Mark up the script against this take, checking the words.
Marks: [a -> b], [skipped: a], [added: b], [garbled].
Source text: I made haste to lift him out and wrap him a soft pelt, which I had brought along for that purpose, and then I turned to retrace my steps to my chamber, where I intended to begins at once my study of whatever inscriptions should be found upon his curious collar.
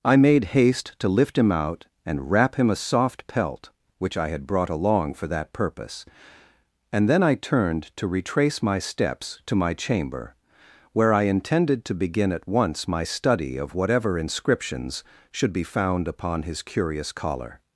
I made haste to lift him out and wrap him a soft pelt, which I had brought along for that purpose, and then I turned to retrace my steps to my chamber, where I intended to [begins -> begin] at once my study of whatever inscriptions should be found upon his curious collar.